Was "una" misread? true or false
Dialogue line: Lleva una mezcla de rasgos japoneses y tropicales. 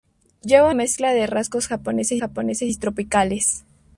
true